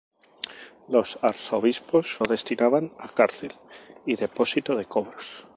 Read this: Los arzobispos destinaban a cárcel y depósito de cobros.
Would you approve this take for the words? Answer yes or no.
yes